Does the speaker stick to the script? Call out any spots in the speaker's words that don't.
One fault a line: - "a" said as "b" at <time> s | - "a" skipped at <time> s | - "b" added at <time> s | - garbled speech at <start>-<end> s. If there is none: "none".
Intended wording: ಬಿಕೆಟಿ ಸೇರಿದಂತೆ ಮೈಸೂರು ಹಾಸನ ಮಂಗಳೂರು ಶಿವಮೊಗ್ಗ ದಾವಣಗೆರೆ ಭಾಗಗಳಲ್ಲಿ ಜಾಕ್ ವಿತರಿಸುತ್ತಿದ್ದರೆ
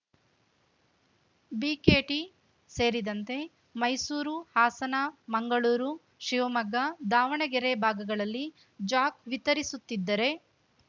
none